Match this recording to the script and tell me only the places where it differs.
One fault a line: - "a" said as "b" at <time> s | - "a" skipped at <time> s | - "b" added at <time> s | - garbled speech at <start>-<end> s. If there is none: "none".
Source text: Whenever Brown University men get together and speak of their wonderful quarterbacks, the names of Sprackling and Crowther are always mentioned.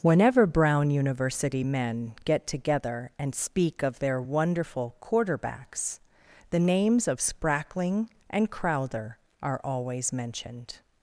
none